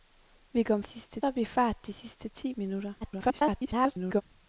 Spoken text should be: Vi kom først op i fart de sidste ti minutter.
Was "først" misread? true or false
true